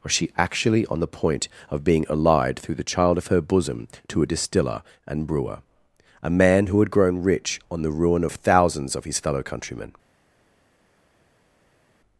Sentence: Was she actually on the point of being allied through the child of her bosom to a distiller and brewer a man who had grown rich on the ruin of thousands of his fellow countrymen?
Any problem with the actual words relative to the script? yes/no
no